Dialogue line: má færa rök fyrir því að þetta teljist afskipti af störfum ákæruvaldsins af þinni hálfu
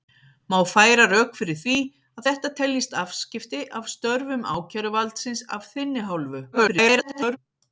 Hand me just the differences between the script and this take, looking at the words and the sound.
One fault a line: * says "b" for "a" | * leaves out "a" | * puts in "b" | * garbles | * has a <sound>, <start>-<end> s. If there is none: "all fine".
* garbles